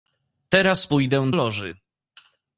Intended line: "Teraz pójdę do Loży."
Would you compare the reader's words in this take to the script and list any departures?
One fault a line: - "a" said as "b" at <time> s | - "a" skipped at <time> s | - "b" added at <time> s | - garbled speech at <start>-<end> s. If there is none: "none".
- "do" skipped at 1.3 s